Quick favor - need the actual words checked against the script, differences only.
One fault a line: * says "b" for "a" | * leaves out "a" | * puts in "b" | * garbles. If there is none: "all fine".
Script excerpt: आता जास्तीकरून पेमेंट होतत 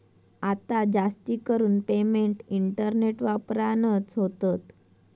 * puts in "इंटरनेट वापरानच"